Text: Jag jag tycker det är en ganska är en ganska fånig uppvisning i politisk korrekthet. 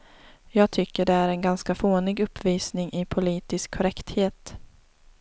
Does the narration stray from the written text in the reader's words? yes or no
yes